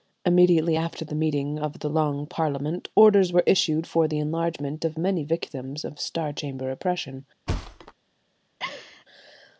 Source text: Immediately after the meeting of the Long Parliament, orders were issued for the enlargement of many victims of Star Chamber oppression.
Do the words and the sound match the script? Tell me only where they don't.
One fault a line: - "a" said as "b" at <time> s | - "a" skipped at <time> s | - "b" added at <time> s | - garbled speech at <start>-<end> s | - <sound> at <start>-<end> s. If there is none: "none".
- thud at 7.5-7.9 s
- laugh at 8.6-9.1 s